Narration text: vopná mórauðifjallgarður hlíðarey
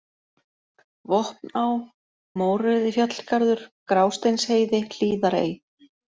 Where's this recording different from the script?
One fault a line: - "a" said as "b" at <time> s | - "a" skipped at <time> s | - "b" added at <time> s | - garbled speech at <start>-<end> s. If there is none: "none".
- "grásteinsheiði" added at 3.9 s